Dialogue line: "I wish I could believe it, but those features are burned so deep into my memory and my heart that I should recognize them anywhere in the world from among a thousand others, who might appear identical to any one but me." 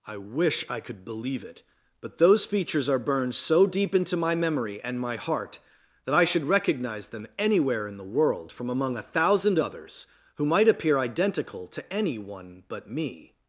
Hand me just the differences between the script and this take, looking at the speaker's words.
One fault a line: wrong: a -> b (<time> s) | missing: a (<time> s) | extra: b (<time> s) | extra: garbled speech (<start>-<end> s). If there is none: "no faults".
no faults